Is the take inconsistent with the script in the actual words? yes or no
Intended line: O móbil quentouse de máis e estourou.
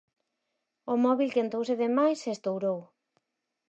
no